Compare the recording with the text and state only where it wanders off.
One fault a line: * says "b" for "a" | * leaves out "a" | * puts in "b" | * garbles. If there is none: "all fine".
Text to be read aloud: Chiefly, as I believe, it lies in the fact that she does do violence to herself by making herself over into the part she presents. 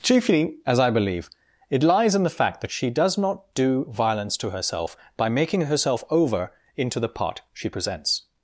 * puts in "not"